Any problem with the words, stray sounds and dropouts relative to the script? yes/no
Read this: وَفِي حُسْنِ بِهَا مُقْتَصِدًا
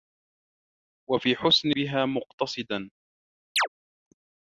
yes